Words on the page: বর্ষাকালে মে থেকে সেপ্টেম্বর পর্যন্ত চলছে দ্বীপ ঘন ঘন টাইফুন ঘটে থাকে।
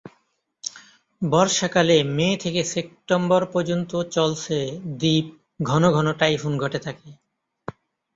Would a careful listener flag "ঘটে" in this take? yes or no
no